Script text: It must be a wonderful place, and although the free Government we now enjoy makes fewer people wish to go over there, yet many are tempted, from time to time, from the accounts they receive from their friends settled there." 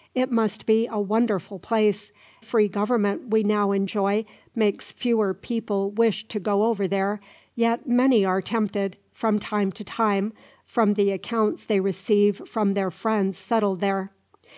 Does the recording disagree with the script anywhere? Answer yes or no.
yes